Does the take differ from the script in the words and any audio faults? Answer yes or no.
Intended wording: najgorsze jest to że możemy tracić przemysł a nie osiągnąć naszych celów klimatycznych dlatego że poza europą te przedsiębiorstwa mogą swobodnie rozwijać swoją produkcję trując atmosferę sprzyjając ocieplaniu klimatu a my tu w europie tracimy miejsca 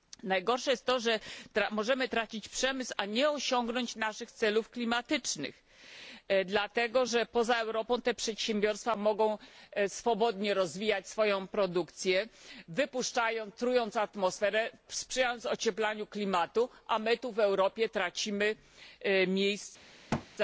yes